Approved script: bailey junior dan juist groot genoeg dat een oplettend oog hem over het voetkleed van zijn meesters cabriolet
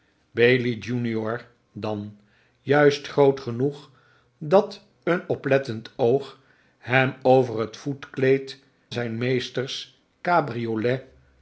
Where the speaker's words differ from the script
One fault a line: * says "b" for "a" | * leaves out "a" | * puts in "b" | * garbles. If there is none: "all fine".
* leaves out "van"